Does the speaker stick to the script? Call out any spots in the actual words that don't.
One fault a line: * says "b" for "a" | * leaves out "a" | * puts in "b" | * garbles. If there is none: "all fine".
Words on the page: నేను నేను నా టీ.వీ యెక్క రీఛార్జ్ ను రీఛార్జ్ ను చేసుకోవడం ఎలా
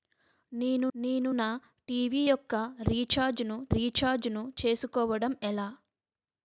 all fine